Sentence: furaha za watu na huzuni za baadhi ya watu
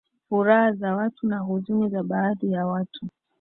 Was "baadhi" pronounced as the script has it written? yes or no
yes